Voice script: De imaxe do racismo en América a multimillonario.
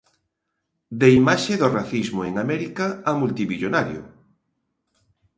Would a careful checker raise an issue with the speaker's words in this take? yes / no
no